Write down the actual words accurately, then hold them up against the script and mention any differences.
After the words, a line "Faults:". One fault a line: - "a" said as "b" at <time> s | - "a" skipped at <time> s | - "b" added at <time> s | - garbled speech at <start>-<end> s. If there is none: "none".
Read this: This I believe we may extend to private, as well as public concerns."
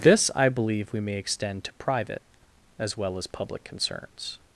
This I believe we may extend to private, as well as public concerns."
Faults:
none